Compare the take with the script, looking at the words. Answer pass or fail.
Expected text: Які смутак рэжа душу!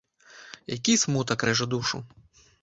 pass